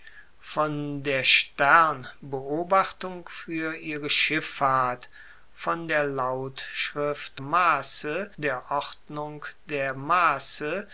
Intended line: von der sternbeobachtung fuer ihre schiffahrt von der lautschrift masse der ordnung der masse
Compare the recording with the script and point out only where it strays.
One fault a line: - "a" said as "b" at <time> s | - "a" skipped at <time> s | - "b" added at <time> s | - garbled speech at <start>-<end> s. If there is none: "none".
none